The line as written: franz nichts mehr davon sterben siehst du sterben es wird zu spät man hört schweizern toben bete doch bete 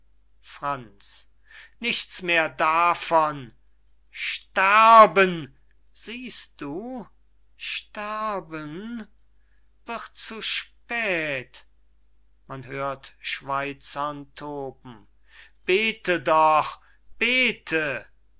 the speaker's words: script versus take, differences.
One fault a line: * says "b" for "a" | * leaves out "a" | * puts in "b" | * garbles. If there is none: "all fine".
* leaves out "es"